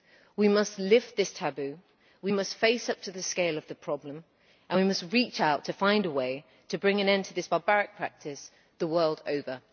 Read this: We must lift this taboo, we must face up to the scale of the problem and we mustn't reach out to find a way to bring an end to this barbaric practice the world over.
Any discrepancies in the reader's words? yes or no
yes